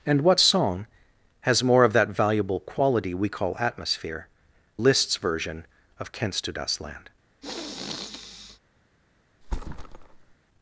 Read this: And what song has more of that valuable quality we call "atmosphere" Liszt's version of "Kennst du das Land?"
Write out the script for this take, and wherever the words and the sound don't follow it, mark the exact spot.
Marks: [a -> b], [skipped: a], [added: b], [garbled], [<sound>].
And what song has more of that valuable quality we call "atmosphere" Liszt's version of "Kennst du das Land?" [sniff] [thud]